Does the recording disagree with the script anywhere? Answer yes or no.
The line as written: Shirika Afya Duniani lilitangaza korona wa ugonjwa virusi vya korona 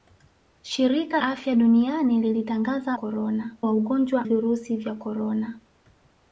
no